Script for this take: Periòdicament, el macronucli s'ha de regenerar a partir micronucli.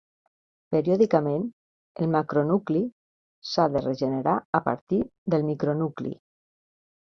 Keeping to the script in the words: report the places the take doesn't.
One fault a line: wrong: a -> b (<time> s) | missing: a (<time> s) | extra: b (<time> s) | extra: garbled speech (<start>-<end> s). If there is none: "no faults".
extra: del (5.4 s)